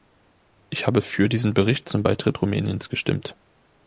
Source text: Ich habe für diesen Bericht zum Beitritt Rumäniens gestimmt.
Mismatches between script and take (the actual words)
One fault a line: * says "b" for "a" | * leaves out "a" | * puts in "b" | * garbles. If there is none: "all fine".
all fine